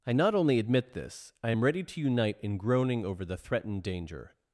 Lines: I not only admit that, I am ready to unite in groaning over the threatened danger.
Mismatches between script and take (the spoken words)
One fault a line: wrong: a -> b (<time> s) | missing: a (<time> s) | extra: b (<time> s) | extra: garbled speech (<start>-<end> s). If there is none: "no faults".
wrong: that -> this (0.9 s)